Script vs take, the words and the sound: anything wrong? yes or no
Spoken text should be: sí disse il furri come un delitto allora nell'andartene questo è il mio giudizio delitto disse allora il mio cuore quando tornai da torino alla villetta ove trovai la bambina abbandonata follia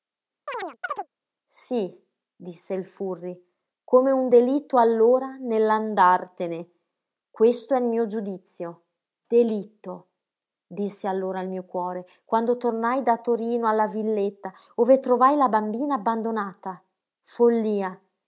yes